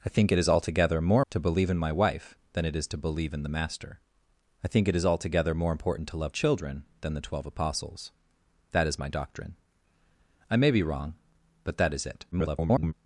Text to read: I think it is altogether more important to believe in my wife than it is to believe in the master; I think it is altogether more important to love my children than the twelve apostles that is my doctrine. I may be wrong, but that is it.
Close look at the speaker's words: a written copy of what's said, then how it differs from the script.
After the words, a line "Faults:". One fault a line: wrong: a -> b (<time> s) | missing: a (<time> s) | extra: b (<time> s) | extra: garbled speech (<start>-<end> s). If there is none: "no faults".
I think it is altogether more to believe in my wife than it is to believe in the master; I think it is altogether more important to love children than the twelve apostles that is my doctrine. I may be wrong, but that is it. [garbled]
Faults:
missing: important (1.2 s)
missing: my (6.3 s)
extra: garbled speech (12.3-12.9 s)